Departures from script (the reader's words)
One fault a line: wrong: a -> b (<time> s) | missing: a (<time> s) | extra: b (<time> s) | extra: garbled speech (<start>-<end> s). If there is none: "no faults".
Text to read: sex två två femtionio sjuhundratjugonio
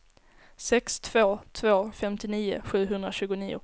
no faults